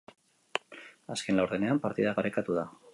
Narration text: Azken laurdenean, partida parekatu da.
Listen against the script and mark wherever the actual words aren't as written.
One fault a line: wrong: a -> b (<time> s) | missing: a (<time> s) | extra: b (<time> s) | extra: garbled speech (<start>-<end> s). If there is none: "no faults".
no faults